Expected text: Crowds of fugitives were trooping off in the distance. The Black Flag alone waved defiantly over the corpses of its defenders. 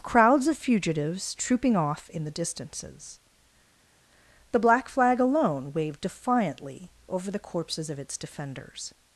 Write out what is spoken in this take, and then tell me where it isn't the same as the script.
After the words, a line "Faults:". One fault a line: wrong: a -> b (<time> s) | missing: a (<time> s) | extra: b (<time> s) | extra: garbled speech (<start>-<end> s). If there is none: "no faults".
Crowds of fugitives trooping off in the distances. The Black Flag alone waved defiantly over the corpses of its defenders.
Faults:
missing: were (1.4 s)
wrong: distance -> distances (2.3 s)